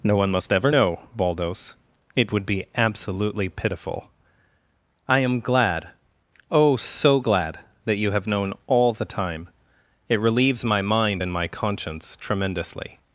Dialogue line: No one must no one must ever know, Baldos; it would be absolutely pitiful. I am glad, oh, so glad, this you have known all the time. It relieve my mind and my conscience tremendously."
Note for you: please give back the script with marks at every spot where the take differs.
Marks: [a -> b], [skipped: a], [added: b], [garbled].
No one must [skipped: no one must] ever know, Baldos; it would be absolutely pitiful. I am glad, oh, so glad, [this -> that] you have known all the time. It [relieve -> relieves] my mind and my conscience tremendously."